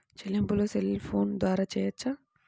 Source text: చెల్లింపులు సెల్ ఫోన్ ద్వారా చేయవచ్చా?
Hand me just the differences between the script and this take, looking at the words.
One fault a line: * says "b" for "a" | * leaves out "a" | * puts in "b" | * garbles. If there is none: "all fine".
all fine